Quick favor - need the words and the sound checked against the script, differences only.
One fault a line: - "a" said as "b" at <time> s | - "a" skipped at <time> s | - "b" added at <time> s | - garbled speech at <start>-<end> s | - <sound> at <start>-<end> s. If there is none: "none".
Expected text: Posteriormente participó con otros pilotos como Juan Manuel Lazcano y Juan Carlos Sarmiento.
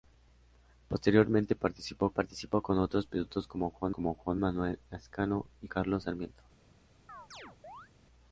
- "participó" added at 2.1 s
- "como Juan" added at 3.9 s
- "Juan" skipped at 5.7 s
- chirp at 7.1-7.9 s